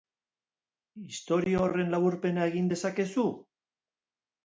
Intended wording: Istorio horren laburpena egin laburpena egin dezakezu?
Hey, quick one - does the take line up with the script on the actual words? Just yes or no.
no